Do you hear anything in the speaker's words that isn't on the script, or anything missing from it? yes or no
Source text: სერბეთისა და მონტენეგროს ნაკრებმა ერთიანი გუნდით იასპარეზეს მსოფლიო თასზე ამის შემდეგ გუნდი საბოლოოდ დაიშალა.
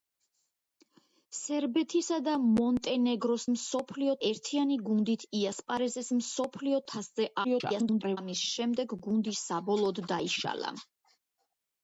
yes